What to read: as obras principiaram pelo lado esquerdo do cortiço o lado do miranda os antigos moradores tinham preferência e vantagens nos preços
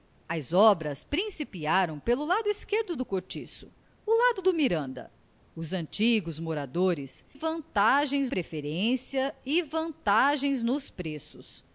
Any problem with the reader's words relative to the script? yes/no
yes